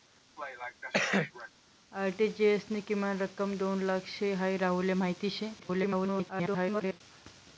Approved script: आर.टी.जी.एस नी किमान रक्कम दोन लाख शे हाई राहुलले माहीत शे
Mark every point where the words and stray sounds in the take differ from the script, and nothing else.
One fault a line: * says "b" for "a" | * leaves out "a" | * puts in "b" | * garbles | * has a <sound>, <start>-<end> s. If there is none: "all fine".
* has a cough, 0.4-1.5 s
* garbles